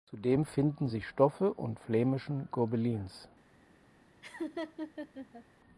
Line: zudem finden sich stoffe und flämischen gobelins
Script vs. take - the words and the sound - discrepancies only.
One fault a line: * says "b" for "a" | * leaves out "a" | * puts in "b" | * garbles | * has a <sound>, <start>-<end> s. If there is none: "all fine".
* has a laugh, 4.2-5.4 s